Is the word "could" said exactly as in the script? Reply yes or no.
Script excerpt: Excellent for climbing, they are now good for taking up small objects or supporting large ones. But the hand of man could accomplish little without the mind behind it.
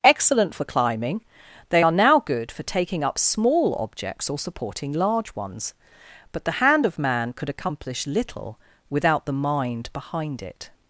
yes